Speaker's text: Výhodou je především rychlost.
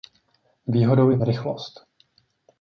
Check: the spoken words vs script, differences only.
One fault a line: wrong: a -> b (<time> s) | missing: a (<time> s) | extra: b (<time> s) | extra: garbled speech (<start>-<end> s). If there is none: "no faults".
missing: především (1.2 s)